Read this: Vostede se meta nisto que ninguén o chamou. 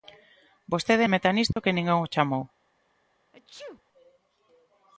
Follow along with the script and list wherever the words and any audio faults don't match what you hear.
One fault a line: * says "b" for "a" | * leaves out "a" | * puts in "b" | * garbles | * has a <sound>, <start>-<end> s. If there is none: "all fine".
* has a dropout, 1.5-1.6 s
* has a sneeze, 3.3-3.8 s